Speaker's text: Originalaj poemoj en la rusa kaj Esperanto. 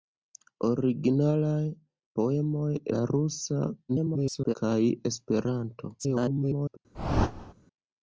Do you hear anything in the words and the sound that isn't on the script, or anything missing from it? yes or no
yes